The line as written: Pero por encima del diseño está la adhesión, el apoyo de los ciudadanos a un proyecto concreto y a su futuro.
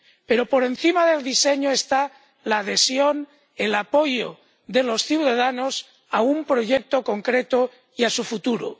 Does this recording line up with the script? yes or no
yes